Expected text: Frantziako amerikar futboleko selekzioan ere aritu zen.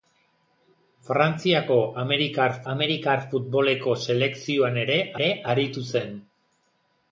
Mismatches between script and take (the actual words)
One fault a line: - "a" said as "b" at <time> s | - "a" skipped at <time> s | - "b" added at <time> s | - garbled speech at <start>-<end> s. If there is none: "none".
- "amerikar" added at 2.7 s
- "ere" added at 5.2 s